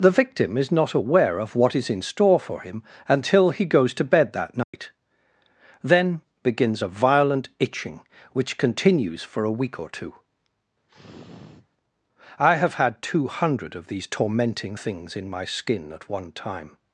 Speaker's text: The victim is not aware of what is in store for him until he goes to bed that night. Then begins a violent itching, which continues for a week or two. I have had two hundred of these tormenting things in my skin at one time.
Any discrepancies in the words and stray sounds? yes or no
yes